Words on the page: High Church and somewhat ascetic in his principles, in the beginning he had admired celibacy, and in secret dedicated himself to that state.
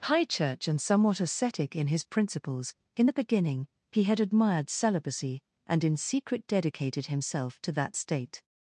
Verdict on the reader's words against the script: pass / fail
pass